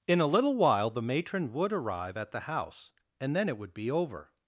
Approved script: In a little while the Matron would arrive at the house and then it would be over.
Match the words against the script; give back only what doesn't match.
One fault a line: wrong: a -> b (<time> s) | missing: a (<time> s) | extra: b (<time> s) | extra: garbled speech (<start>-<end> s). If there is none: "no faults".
no faults